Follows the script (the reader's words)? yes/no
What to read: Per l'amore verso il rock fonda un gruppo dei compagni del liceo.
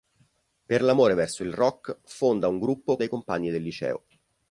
yes